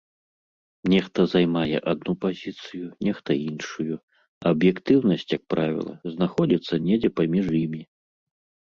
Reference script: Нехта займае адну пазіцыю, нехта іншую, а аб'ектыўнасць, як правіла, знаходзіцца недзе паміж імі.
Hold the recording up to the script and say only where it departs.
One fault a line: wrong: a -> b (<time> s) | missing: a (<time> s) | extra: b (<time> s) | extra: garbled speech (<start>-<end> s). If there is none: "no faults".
no faults